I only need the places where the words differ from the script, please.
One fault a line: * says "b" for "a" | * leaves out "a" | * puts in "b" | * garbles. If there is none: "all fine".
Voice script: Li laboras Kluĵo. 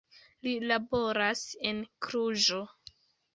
* puts in "en"